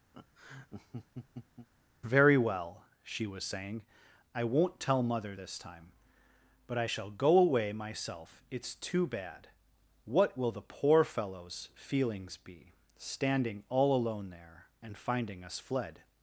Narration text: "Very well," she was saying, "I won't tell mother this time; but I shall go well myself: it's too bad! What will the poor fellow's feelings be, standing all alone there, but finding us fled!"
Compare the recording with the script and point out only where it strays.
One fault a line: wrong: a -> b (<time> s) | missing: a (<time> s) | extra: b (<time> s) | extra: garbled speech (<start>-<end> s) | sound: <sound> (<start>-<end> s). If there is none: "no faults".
sound: laugh (0.1-1.7 s)
wrong: well -> away (7.4 s)
wrong: but -> and (14.8 s)